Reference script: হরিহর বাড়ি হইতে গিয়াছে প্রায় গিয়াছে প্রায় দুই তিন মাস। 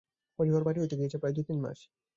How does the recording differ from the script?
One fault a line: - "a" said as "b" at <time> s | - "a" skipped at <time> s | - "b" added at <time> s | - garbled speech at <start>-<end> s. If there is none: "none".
- "গিয়াছে প্রায়" skipped at 1.3 s